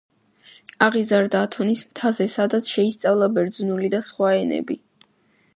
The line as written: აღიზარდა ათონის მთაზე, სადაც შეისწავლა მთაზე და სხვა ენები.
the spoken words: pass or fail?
fail